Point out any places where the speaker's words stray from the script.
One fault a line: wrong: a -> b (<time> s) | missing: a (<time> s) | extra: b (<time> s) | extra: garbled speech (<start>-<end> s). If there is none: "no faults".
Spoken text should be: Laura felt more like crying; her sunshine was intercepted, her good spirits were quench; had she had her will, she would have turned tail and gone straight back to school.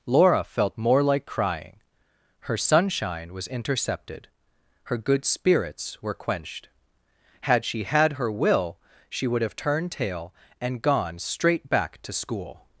wrong: quench -> quenched (6.1 s)